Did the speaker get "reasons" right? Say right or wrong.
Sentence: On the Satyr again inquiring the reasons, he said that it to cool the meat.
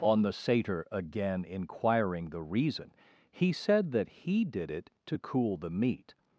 wrong